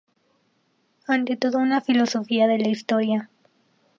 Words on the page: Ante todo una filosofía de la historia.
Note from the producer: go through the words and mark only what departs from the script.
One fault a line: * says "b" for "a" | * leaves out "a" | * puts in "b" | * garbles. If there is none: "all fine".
all fine